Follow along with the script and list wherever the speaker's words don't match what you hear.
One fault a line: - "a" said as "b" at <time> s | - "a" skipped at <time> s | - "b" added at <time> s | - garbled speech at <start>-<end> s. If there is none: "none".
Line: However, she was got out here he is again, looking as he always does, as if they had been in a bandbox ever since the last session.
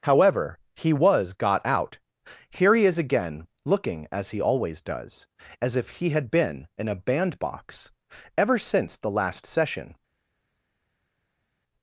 - "she" said as "he" at 0.8 s
- "they" said as "he" at 6.0 s